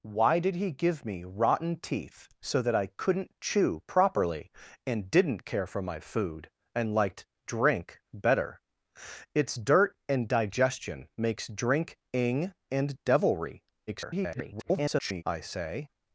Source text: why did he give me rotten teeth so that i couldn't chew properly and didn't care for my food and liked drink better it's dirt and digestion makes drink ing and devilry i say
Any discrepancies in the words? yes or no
yes